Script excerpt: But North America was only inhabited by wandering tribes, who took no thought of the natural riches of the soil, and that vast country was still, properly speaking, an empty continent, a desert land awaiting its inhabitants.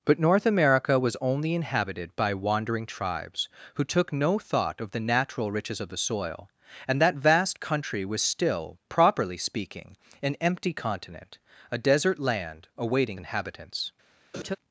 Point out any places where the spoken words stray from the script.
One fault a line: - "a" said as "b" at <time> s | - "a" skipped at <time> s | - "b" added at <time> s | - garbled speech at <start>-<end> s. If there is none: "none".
- "its" skipped at 13.2 s